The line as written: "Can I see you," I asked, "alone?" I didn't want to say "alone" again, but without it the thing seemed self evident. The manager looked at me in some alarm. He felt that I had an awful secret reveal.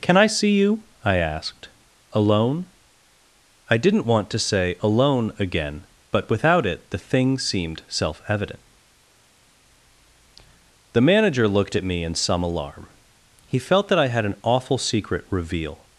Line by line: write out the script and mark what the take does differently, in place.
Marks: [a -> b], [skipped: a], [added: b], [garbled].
"Can I see you," I asked, "alone?" I didn't want to say "alone" again, but without it the thing seemed self evident. The manager looked at me in some alarm. He felt that I had an awful secret reveal.